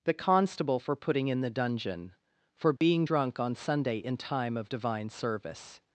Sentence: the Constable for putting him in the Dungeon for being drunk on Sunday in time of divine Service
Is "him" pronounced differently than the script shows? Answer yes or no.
yes